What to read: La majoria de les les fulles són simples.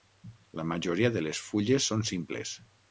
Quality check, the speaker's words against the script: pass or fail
fail